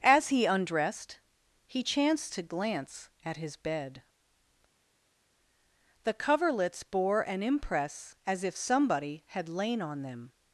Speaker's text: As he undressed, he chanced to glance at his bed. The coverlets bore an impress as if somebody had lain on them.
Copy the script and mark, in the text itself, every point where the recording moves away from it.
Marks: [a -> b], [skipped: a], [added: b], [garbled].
As he undressed, he chanced to glance at his bed. The coverlets bore an impress as if somebody had lain on them.